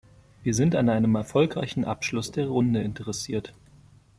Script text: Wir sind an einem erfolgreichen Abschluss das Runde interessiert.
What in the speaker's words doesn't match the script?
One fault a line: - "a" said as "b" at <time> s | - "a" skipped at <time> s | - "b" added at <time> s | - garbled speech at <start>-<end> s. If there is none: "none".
- "das" said as "der" at 2.3 s